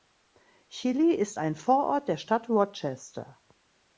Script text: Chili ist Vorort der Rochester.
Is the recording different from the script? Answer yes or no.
yes